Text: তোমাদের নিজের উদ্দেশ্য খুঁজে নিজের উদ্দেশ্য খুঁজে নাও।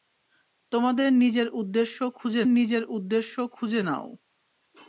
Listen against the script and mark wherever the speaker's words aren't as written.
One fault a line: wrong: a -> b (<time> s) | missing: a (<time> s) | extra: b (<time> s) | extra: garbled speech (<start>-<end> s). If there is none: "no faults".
no faults